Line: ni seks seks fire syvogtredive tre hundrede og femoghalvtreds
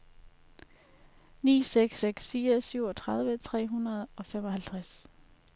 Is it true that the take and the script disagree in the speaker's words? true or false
false